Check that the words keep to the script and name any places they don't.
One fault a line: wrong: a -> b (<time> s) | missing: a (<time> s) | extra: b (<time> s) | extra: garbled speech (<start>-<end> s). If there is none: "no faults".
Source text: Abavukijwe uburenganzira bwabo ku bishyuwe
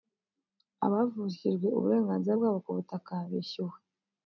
extra: butaka (2.8 s)